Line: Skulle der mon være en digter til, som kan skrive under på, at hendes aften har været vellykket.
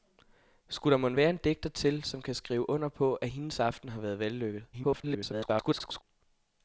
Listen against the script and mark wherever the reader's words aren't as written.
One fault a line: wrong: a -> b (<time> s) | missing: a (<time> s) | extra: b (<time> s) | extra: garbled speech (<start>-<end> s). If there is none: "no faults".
extra: garbled speech (4.7-6.0 s)